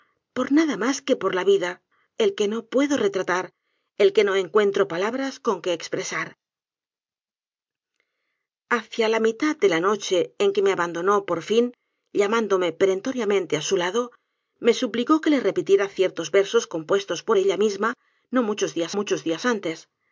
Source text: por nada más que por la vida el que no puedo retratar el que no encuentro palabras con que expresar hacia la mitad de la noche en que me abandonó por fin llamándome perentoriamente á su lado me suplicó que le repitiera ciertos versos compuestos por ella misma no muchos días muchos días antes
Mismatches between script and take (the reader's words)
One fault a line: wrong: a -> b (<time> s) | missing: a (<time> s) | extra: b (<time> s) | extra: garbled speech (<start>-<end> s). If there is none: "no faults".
no faults